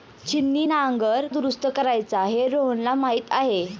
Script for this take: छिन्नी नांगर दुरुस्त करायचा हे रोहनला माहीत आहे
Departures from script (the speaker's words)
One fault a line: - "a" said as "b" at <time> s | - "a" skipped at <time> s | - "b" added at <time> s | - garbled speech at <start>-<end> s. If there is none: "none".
none